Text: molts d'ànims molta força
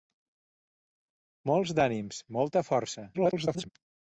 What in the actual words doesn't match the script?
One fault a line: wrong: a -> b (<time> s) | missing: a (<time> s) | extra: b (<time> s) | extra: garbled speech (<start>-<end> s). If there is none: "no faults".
extra: garbled speech (3.1-3.7 s)